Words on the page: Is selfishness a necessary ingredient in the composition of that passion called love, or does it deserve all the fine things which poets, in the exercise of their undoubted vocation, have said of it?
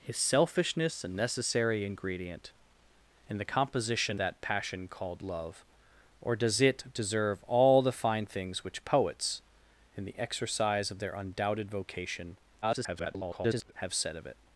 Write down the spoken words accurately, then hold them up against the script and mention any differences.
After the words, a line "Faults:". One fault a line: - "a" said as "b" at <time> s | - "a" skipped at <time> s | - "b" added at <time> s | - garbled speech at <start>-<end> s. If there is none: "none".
Is selfishness a necessary ingredient in the composition that passion called love, or does it deserve all the fine things which poets, in the exercise of their undoubted vocation, [garbled] have said of it?
Faults:
- "of" skipped at 4.2 s
- garbled speech at 12.6-13.7 s